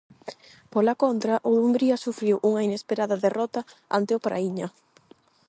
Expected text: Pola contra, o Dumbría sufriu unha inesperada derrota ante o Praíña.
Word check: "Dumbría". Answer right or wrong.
right